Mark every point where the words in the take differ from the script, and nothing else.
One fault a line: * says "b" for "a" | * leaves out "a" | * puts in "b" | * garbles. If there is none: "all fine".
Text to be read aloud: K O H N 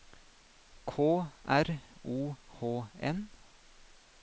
* puts in "R"